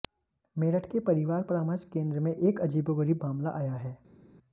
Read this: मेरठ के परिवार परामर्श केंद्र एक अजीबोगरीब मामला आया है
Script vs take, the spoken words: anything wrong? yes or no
yes